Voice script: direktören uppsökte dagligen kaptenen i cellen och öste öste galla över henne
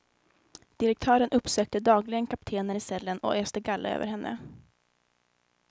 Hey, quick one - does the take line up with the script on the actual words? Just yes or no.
no